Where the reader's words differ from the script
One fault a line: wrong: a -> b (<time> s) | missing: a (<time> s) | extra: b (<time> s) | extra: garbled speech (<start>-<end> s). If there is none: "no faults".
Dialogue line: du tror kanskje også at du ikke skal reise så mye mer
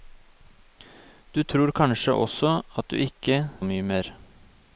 missing: skal reise så (3.4 s)